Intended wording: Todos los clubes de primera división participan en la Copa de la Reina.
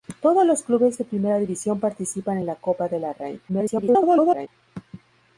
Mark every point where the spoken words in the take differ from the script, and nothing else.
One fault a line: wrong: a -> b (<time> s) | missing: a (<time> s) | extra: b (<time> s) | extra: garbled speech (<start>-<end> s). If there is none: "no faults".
extra: garbled speech (3.5-4.5 s)